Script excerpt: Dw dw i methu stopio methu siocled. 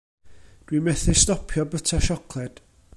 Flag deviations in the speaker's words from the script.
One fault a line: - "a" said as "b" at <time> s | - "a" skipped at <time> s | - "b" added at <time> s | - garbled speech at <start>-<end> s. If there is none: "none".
- "dw" skipped at 0.8 s
- "methu" said as "byta" at 1.7 s